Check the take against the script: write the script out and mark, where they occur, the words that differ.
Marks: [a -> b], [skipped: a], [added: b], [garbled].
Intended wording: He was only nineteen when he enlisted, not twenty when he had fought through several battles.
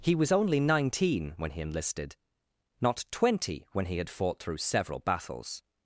He was only nineteen when he enlisted, not twenty when he had fought through several battles.